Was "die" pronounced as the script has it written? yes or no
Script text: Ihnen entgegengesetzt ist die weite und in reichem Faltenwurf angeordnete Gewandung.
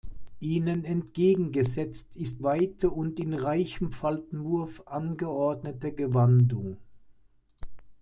no